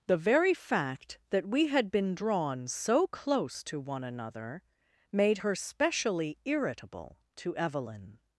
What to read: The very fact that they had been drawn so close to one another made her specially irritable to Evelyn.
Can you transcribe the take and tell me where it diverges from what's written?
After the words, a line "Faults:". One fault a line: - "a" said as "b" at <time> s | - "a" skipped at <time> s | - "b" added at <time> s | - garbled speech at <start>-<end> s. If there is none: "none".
The very fact that we had been drawn so close to one another made her specially irritable to Evelyn.
Faults:
- "they" said as "we" at 1.4 s